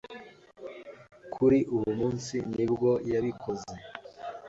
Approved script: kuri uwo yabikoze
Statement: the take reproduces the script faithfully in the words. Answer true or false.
false